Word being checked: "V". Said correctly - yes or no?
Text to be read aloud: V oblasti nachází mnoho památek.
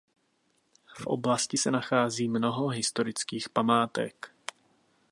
yes